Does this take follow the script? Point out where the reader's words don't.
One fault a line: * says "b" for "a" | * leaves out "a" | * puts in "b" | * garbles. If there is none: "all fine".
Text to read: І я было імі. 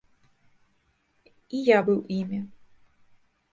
* says "быў" for "было"